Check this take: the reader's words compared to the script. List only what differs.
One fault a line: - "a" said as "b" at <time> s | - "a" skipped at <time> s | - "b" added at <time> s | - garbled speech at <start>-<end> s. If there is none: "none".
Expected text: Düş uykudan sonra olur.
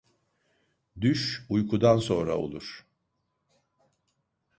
none